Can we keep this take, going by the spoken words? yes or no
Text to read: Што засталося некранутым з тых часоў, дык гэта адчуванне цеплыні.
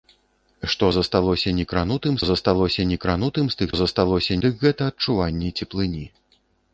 no